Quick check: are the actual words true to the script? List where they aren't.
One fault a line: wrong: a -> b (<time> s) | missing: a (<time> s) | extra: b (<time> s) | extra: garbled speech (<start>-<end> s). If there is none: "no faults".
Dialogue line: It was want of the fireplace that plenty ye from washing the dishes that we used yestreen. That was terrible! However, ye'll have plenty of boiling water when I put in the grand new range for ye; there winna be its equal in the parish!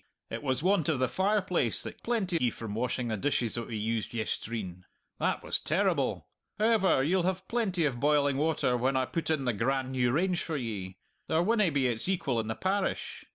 no faults